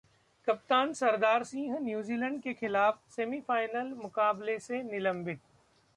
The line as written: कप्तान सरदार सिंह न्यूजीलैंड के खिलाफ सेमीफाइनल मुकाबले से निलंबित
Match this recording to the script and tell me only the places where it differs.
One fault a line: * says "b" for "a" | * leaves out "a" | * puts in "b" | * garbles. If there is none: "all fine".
all fine